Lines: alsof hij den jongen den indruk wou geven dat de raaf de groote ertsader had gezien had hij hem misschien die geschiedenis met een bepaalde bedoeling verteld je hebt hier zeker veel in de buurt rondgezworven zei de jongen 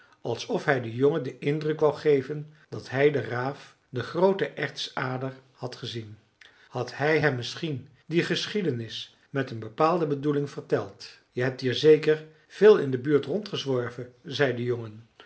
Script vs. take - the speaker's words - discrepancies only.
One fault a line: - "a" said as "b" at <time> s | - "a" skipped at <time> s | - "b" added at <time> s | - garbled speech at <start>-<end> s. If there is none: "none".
- "hij" added at 2.9 s